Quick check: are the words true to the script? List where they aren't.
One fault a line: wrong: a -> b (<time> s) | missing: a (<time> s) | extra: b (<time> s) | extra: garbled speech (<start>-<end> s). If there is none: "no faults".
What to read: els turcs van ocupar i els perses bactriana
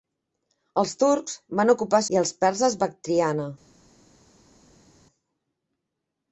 no faults